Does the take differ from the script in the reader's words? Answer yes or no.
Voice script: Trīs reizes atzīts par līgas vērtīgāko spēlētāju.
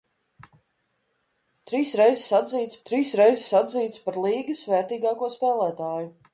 yes